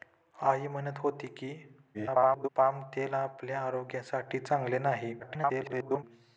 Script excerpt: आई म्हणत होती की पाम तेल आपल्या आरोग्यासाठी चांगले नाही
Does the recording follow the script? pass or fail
fail